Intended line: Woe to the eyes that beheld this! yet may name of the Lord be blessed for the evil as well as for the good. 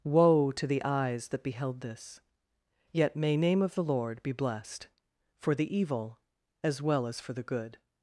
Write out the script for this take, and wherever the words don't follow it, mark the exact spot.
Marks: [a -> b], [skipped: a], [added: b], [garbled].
Woe to the eyes that beheld this! yet may name of the Lord be blessed for the evil as well as for the good.